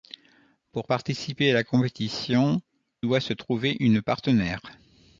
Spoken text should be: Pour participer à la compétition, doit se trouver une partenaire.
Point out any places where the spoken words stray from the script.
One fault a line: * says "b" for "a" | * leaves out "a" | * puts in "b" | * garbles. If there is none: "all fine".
all fine